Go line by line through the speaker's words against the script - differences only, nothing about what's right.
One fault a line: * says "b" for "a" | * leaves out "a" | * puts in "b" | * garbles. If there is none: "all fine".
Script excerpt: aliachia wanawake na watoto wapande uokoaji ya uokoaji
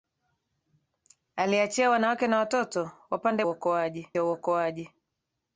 all fine